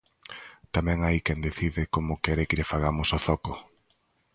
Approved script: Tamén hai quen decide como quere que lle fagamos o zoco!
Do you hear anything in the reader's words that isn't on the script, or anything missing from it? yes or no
no